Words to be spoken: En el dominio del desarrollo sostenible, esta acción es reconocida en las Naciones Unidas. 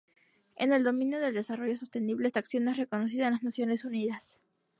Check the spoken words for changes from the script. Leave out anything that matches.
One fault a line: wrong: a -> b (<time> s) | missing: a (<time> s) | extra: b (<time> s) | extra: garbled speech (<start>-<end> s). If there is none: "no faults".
no faults